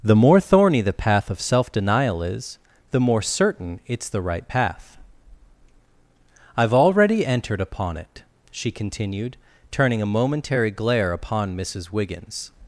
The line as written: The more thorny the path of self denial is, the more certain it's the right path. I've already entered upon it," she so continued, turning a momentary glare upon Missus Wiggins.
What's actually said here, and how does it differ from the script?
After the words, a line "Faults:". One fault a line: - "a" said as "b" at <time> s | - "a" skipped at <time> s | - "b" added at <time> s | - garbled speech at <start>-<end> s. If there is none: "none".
The more thorny the path of self denial is, the more certain it's the right path. I've already entered upon it," she continued, turning a momentary glare upon Missus Wiggins.
Faults:
- "so" skipped at 8.7 s